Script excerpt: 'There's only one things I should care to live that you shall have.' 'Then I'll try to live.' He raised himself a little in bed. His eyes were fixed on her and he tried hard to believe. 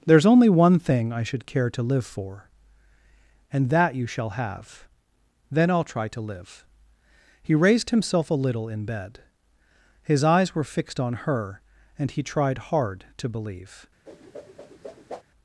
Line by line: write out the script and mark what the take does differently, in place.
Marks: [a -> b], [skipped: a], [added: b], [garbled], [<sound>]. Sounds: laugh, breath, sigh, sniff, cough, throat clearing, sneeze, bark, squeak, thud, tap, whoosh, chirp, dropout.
'There's only one [things -> thing] I should care to live [added: for And] that you shall have.' 'Then I'll try to live.' He raised himself a little in bed. His eyes were fixed on her and he tried hard to believe. [whoosh]